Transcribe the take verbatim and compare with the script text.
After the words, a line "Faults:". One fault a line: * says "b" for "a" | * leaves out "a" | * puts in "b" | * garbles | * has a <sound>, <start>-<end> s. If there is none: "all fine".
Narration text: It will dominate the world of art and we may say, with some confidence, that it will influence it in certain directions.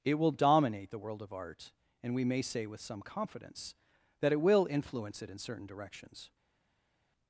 It will dominate the world of art and we may say, with some confidence, that it will influence it in certain directions.
Faults:
all fine